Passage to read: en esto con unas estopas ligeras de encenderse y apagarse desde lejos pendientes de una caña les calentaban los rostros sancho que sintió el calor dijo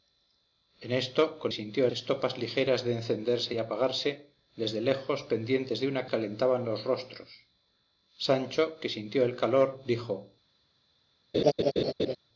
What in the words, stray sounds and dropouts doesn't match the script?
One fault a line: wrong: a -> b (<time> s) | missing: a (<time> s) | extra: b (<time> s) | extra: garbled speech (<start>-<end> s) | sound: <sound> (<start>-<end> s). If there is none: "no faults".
wrong: unas -> sintió (1.5 s)
missing: caña les (6.1 s)
sound: laugh (11.3-12.2 s)